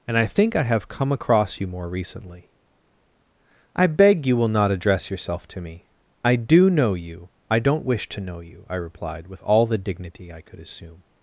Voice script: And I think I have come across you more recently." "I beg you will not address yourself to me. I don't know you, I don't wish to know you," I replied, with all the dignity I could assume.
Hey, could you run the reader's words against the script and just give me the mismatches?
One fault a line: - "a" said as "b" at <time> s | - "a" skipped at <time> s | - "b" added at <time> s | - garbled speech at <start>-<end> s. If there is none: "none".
- "don't" said as "do" at 6.4 s